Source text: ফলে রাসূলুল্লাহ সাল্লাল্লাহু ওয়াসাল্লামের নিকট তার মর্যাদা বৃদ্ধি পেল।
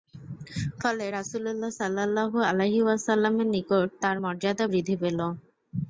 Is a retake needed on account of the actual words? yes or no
yes